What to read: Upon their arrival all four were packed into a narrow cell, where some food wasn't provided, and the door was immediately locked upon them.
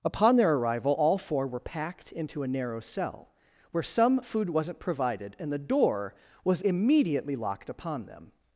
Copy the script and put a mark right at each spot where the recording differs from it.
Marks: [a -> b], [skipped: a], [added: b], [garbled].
Upon their arrival all four were packed into a narrow cell, where some food wasn't provided, and the door was immediately locked upon them.